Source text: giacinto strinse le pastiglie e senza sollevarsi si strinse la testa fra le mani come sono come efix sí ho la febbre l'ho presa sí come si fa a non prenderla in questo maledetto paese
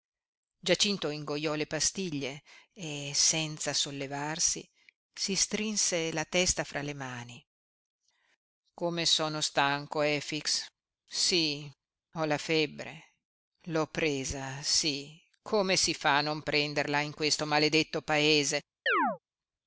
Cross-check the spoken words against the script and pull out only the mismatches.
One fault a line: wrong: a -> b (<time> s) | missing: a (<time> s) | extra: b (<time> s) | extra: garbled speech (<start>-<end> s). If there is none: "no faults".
wrong: strinse -> ingoiò (1.1 s)
wrong: come -> stanco (9.4 s)